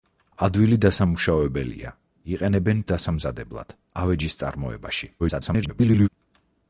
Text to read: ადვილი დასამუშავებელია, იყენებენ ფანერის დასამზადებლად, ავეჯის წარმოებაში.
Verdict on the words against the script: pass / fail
fail